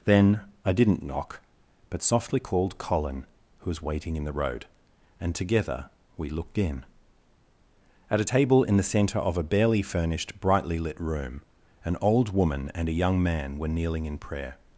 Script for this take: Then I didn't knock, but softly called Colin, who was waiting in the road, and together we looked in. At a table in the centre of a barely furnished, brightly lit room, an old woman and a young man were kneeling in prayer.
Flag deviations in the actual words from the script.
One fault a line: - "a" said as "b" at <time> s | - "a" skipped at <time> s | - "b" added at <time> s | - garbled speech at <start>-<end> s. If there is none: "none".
none